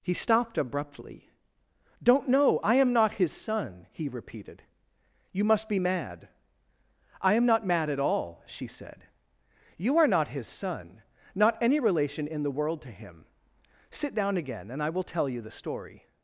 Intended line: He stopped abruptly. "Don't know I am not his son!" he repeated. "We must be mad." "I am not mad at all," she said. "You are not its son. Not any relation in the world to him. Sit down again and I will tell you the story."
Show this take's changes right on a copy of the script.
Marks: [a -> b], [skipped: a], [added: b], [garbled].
He stopped abruptly. "Don't know I am not his son!" he repeated. ["We -> You] must be mad." "I am not mad at all," she said. "You are not [its -> his] son. Not any relation in the world to him. Sit down again and I will tell you the story."